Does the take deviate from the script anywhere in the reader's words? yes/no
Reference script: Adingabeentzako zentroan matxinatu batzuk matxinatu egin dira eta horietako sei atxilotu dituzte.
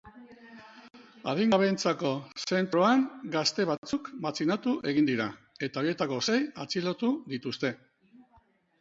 yes